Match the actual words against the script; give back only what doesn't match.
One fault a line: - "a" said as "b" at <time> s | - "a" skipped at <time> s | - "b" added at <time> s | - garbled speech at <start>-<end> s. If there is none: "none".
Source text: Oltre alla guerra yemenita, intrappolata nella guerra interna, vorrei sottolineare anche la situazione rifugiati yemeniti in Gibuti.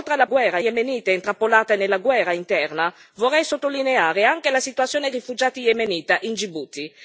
none